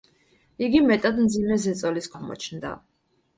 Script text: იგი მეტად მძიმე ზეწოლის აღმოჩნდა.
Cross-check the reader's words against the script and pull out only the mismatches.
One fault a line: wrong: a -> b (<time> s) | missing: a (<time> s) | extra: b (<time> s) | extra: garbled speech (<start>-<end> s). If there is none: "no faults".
no faults